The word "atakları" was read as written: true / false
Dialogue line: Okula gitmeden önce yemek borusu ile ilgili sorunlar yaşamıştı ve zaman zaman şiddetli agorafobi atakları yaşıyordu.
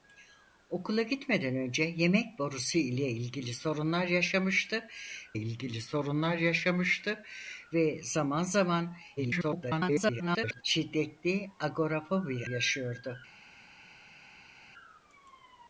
false